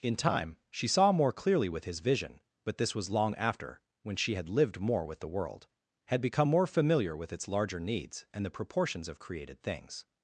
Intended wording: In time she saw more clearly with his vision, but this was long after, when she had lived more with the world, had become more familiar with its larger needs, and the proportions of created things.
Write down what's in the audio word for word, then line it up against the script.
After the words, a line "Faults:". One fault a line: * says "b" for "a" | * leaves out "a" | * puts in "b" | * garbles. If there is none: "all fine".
In time she saw more clearly with his vision, but this was long after, when she had lived more with the world, had become more familiar with its larger needs, and the proportions of created things.
Faults:
all fine